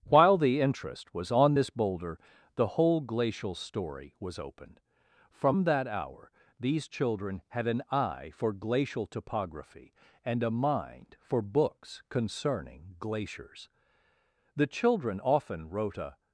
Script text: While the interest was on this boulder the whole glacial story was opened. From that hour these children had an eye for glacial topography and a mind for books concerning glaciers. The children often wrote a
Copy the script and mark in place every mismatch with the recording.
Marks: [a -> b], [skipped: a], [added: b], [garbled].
While the interest was on this boulder the whole glacial story was opened. From that hour these children had an eye for glacial topography and a mind for books concerning glaciers. The children often wrote a